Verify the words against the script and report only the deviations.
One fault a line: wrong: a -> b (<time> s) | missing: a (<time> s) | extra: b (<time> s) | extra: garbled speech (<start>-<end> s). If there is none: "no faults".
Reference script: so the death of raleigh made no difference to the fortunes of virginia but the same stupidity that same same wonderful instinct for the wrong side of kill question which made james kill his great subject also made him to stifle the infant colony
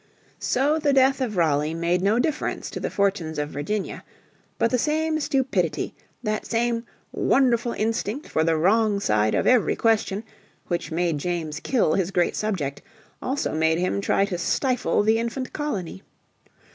missing: same (6.9 s)
wrong: kill -> every (9.5 s)
extra: try (14.0 s)